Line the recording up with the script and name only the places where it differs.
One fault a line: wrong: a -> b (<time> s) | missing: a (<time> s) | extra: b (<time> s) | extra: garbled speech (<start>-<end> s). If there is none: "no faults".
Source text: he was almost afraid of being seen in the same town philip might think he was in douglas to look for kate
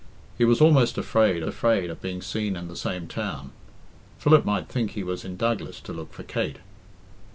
extra: afraid (1.5 s)